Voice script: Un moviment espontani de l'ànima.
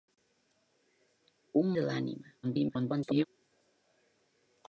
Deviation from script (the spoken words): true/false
true